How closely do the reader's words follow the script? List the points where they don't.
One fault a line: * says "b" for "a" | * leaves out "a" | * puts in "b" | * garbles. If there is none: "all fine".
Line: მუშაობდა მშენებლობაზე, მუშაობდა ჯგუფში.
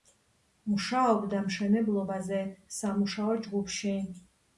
* says "სამუშაო" for "მუშაობდა"